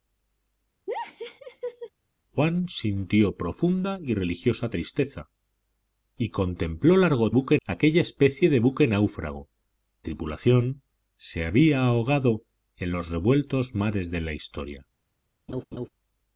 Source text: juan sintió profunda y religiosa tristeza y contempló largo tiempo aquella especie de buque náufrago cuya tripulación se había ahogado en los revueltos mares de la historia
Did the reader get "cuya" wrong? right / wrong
wrong